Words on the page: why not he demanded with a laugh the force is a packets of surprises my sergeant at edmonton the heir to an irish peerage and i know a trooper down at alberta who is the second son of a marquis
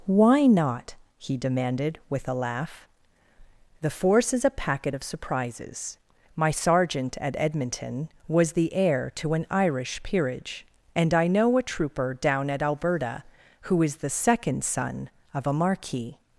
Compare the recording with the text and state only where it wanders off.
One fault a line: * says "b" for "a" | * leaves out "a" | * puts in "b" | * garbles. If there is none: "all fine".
* says "packet" for "packets"
* puts in "was"